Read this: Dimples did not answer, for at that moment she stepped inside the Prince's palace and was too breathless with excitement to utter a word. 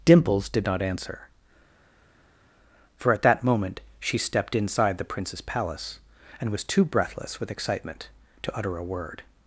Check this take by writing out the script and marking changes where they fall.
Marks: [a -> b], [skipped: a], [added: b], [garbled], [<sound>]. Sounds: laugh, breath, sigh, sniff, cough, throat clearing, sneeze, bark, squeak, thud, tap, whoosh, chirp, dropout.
Dimples did not answer, for at that moment she stepped inside the Prince's palace and was too breathless with excitement to utter a word.